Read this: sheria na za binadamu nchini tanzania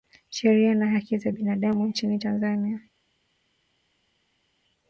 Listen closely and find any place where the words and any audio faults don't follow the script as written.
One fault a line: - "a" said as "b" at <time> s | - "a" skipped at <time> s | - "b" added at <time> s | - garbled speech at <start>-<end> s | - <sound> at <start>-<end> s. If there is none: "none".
- "haki" added at 0.9 s